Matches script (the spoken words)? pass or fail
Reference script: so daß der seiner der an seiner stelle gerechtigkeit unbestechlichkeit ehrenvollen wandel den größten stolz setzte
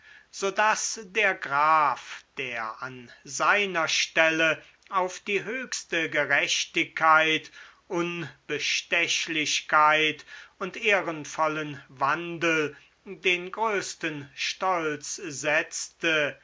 fail